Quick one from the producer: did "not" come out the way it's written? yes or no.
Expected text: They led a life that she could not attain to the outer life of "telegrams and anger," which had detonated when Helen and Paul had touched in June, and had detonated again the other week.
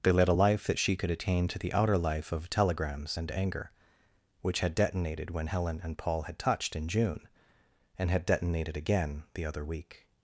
no